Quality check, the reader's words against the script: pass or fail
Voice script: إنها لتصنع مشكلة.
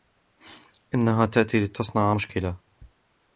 fail